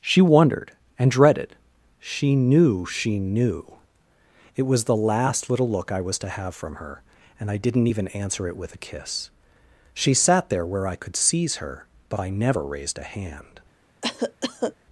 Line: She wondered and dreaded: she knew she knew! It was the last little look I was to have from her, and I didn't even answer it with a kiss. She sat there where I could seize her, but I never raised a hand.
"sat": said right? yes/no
yes